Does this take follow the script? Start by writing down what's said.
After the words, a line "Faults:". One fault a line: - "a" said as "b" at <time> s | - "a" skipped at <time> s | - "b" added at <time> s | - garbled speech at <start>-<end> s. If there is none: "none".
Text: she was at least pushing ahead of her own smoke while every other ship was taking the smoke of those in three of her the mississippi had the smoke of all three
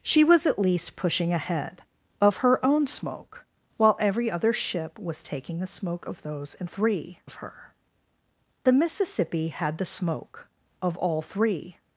she was at least pushing ahead of her own smoke while every other ship was taking the smoke of those in three of her the mississippi had the smoke of all three
Faults:
none